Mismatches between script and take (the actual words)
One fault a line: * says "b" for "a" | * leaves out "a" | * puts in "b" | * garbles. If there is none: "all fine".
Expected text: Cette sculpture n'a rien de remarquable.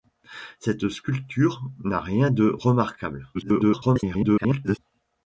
* garbles